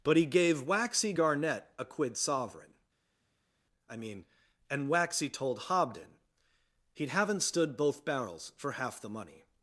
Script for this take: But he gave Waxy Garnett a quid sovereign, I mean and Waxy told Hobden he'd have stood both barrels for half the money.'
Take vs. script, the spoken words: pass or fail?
fail